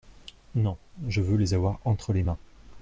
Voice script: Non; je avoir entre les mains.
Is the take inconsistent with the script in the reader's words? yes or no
yes